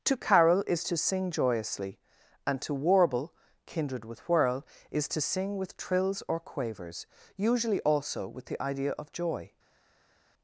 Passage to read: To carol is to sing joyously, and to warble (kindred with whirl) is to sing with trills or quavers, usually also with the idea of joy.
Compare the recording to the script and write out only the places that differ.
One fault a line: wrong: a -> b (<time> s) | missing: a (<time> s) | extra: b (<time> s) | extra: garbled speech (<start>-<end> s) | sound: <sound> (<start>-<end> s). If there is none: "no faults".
no faults